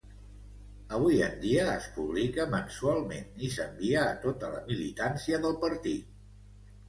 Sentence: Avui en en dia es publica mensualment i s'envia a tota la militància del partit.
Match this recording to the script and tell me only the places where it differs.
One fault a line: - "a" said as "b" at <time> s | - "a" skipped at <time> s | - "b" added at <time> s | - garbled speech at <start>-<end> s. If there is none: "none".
- "en" skipped at 1.4 s